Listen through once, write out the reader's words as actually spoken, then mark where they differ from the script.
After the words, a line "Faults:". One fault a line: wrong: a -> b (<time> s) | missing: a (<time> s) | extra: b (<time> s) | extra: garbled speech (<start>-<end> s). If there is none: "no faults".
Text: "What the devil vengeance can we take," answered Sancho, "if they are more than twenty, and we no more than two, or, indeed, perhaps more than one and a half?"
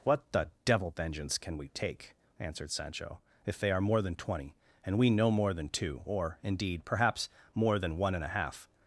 "What the devil vengeance can we take," answered Sancho, "if they are more than twenty, and we no more than two, or, indeed, perhaps more than one and a half?"
Faults:
no faults